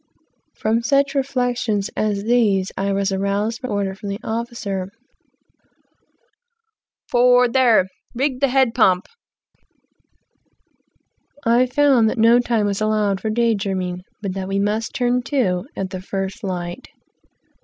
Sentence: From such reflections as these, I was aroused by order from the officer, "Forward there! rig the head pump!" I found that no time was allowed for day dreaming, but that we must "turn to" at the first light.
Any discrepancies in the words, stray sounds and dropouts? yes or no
no